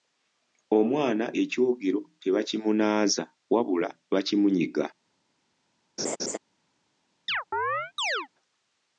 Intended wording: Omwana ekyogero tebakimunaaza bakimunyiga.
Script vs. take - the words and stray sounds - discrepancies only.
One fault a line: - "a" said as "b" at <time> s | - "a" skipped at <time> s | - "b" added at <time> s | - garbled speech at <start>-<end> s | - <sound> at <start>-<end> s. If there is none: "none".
- "wabula" added at 3.5 s
- laugh at 6.0-6.4 s
- chirp at 7.3-8.3 s